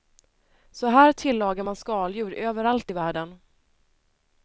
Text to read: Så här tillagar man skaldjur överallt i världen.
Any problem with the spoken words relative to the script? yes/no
no